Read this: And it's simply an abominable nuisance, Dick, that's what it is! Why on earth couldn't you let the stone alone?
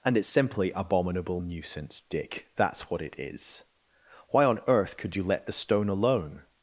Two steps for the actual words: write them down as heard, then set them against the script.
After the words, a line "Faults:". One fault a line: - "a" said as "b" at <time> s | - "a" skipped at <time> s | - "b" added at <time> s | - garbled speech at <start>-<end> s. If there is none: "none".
And it's simply abominable nuisance, Dick, that's what it is! Why on earth could you let the stone alone?
Faults:
- "an" skipped at 0.7 s
- "couldn't" said as "could" at 5.0 s